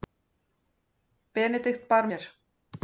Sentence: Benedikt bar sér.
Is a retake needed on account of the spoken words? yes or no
no